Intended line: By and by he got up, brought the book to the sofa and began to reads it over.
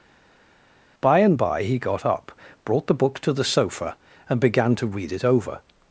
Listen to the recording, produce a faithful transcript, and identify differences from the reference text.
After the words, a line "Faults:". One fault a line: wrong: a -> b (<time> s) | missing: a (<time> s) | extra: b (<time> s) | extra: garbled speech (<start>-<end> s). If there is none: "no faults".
By and by he got up, brought the book to the sofa and began to read it over.
Faults:
wrong: reads -> read (4.9 s)